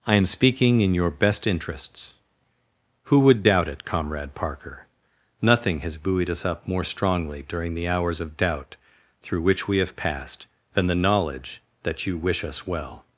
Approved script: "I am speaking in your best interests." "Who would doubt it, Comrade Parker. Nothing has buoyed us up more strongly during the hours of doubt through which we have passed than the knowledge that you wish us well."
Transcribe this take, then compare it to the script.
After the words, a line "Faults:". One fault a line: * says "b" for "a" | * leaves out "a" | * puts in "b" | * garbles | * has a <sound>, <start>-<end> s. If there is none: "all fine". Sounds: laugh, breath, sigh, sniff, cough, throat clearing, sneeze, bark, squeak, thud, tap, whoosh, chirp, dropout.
"I am speaking in your best interests." "Who would doubt it, Comrade Parker. Nothing has buoyed us up more strongly during the hours of doubt through which we have passed than the knowledge that you wish us well."
Faults:
all fine